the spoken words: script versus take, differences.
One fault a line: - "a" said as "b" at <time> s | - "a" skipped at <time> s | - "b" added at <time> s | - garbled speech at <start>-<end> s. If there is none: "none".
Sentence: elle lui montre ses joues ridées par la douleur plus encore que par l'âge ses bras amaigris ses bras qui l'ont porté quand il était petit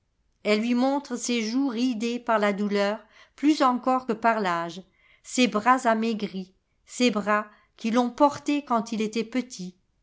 none